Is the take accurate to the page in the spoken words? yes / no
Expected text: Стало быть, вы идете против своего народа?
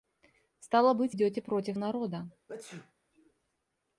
no